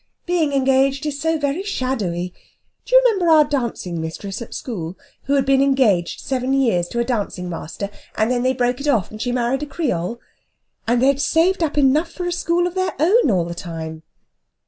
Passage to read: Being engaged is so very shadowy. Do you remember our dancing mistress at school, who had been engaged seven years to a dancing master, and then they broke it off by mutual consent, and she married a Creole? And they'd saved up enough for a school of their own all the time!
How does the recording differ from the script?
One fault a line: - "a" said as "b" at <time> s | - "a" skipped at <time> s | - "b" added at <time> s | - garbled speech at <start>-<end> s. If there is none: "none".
- "by mutual consent" skipped at 9.1 s